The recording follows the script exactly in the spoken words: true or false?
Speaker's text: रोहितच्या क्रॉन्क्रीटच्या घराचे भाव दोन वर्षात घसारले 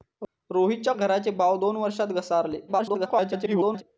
false